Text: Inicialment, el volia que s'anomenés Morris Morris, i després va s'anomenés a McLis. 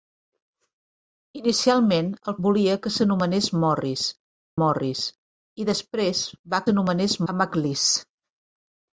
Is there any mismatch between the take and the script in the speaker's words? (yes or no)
no